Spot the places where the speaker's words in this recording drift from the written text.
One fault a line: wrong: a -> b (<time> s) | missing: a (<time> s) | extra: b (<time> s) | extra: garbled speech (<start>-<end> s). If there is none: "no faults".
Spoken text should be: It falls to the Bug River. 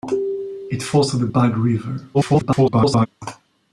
extra: garbled speech (2.1-3.1 s)